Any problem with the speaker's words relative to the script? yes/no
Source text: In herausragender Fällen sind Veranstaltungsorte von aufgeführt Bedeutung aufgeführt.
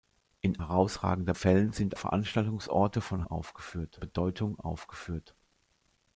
no